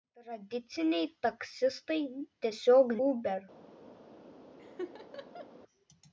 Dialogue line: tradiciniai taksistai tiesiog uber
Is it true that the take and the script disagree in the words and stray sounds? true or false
true